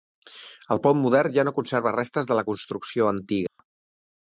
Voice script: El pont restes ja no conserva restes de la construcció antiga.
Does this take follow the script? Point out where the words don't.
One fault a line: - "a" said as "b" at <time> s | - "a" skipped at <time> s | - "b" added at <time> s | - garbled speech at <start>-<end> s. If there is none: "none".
- "restes" said as "modern" at 1.0 s